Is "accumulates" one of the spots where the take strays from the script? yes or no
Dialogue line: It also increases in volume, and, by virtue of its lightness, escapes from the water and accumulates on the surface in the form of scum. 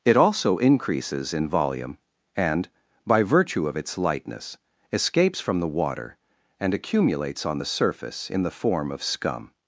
no